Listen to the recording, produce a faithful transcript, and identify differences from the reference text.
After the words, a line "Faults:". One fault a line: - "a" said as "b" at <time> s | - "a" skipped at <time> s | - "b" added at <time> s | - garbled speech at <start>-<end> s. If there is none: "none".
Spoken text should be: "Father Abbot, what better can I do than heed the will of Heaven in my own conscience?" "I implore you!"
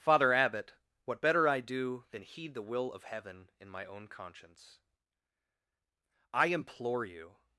"Father Abbot, what better I do than heed the will of Heaven in my own conscience?" "I implore you!"
Faults:
- "can" skipped at 1.5 s